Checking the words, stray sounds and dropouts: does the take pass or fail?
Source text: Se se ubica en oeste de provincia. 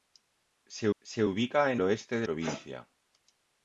pass